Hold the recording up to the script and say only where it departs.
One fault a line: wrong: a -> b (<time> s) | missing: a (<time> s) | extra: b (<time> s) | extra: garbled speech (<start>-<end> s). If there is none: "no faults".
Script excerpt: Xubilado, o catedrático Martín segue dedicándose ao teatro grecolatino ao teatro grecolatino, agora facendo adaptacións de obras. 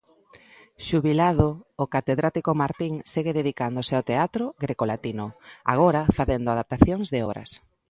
missing: ao teatro grecolatino (5.2 s)